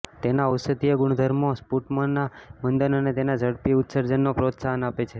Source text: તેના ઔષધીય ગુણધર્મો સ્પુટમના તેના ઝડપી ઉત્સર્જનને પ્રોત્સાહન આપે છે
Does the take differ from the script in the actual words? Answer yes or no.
yes